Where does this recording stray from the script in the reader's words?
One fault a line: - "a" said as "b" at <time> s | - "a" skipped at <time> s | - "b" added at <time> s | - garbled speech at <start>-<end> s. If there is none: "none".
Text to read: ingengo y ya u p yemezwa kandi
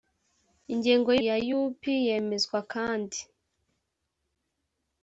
none